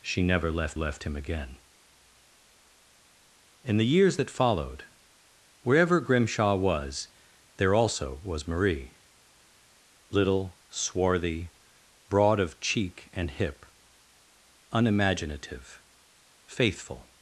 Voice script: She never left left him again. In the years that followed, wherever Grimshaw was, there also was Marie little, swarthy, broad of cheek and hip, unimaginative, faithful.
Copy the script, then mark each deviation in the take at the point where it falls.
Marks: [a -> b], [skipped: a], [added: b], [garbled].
She never left left him again. In the years that followed, wherever Grimshaw was, there also was Marie little, swarthy, broad of cheek and hip, unimaginative, faithful.